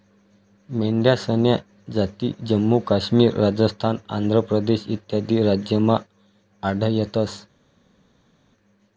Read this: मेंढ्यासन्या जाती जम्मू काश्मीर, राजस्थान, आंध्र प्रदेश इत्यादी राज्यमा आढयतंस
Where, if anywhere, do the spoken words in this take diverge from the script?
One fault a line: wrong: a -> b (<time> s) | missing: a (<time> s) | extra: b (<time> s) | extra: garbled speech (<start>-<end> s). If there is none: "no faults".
no faults